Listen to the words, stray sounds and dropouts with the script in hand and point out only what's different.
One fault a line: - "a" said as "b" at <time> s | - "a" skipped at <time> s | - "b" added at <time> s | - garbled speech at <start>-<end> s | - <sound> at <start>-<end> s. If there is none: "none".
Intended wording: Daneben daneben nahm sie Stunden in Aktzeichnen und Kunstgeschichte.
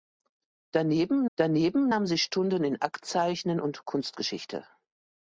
none